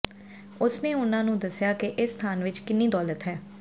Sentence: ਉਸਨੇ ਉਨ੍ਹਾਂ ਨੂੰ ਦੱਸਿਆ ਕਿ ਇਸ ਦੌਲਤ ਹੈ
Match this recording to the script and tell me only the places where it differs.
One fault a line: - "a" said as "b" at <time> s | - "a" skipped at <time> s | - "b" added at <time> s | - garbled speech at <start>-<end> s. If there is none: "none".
- "ਸਥਾਨ ਵਿੱਚ ਕਿੰਨੀ" added at 2.1 s